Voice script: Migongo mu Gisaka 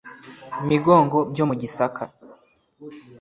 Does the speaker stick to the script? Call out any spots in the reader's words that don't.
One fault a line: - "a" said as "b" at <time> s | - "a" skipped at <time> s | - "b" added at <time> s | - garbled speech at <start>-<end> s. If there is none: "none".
- "byo" added at 1.3 s